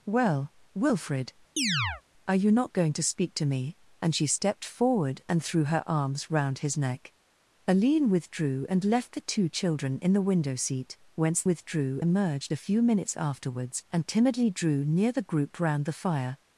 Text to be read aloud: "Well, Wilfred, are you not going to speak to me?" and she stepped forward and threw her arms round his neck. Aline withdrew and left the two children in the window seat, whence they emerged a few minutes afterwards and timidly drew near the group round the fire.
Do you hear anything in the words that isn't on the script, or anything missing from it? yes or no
yes